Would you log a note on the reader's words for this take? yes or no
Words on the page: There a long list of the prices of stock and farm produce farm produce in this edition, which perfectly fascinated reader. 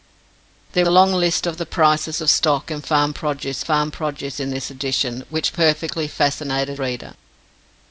no